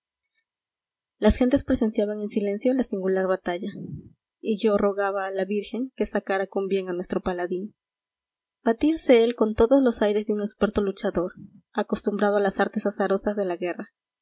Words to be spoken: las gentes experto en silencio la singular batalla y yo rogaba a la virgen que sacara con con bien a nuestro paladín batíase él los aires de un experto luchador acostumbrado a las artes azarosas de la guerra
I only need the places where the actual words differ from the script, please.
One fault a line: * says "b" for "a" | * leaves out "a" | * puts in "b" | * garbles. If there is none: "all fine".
* says "presenciaban" for "experto"
* leaves out "con"
* puts in "con todos"